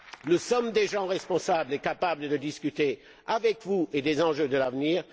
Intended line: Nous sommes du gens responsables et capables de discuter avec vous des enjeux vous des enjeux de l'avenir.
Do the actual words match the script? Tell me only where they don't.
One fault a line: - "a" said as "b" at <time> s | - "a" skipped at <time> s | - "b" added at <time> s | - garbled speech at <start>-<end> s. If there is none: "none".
- "du" said as "des" at 0.7 s
- "vous des enjeux" skipped at 4.5 s